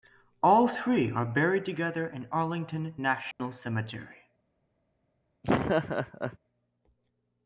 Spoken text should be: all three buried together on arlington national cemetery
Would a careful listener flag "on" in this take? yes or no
yes